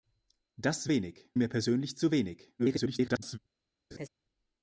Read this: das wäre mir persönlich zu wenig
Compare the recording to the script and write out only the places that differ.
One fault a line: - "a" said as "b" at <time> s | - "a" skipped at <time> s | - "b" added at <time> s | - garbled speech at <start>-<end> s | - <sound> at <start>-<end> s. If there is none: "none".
- "wäre" said as "wenig" at 0.9 s
- garbled speech at 2.6-3.4 s
- laugh at 3.9-4.1 s